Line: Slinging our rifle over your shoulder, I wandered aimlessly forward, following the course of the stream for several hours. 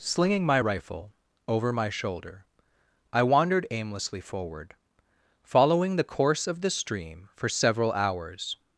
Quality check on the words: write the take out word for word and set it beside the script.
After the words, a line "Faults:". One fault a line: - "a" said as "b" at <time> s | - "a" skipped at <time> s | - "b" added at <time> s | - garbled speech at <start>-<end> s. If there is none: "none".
Slinging my rifle over my shoulder, I wandered aimlessly forward, following the course of the stream for several hours.
Faults:
- "our" said as "my" at 0.5 s
- "your" said as "my" at 1.7 s